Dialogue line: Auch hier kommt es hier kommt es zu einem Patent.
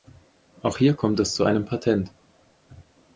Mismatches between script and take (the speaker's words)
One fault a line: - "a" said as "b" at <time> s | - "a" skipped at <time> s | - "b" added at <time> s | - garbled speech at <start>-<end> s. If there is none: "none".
- "hier kommt es" skipped at 1.4 s